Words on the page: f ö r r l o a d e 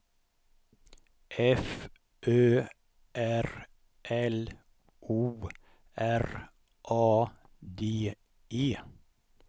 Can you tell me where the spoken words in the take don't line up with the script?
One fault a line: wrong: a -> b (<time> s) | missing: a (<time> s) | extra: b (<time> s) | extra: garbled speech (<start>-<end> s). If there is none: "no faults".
missing: r (3.5 s)
extra: r (6.0 s)